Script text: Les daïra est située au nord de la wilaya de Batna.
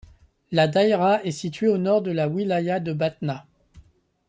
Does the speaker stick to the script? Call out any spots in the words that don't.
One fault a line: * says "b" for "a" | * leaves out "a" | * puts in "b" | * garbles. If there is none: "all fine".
* says "La" for "Les"